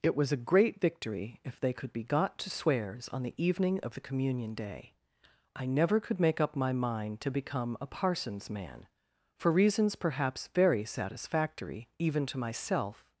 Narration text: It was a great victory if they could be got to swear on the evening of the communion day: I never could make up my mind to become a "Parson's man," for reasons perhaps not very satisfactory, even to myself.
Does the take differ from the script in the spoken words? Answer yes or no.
yes